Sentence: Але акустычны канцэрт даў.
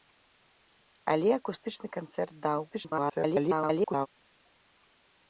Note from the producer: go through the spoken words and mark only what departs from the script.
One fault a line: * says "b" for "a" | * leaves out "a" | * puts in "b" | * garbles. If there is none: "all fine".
* garbles